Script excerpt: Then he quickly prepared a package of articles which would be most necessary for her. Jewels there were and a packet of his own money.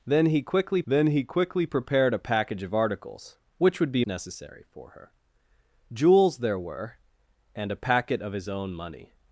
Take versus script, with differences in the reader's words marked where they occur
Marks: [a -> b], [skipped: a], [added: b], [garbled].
Then he quickly [added: then he quickly] prepared a package of articles which would be [skipped: most] necessary for her. Jewels there were and a packet of his own money.